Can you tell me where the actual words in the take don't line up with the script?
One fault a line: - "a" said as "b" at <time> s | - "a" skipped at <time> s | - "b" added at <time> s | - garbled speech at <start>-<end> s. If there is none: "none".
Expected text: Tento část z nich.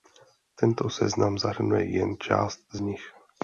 - "seznam zahrnuje jen" added at 0.9 s